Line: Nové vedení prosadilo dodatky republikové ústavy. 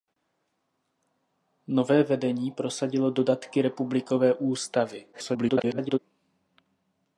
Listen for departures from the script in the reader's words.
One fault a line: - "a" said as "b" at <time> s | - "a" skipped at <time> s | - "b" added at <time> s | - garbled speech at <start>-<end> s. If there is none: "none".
- garbled speech at 5.1-6.0 s